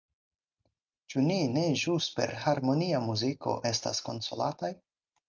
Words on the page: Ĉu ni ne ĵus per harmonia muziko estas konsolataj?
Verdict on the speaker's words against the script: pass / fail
pass